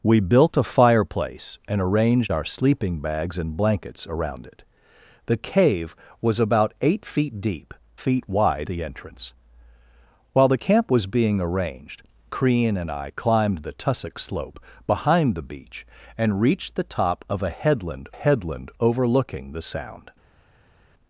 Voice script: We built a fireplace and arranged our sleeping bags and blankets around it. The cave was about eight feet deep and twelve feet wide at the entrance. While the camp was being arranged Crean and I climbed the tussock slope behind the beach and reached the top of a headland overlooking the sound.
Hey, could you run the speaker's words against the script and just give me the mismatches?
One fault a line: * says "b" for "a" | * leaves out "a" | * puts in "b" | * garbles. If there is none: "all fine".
* leaves out "and twelve"
* leaves out "at"
* puts in "headland"